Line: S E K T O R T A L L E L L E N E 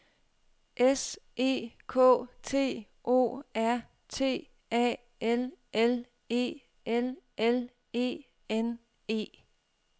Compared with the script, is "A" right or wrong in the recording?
right